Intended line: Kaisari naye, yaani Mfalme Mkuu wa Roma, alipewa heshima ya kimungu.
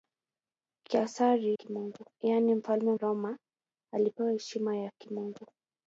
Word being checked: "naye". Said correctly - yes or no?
no